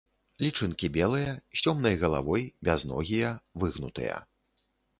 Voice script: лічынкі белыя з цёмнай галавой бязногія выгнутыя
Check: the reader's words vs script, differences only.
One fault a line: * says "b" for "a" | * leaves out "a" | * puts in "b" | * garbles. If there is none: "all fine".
all fine